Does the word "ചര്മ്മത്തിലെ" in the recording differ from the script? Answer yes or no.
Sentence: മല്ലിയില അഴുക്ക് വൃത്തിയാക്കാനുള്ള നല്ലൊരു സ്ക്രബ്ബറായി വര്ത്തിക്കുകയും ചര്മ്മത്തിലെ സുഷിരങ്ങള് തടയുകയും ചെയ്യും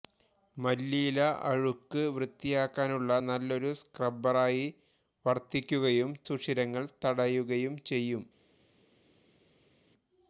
yes